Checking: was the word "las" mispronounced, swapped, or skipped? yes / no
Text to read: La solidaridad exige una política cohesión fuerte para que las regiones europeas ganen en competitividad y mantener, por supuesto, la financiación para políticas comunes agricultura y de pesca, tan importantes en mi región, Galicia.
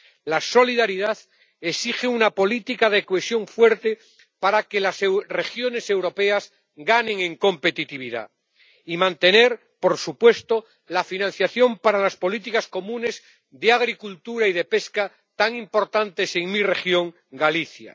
no